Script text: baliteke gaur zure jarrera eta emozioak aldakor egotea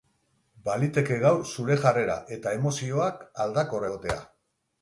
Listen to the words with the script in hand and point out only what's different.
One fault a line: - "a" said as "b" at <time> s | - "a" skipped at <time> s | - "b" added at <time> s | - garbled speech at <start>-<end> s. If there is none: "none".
none